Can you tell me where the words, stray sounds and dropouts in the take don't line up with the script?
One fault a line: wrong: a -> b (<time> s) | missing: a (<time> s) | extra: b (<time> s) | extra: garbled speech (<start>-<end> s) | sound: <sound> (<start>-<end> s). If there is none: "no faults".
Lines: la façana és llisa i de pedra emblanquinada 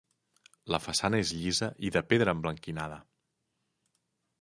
no faults